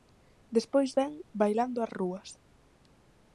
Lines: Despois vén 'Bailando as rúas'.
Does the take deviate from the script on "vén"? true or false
false